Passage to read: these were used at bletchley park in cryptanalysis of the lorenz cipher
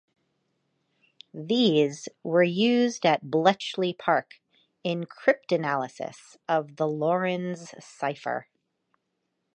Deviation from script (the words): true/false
false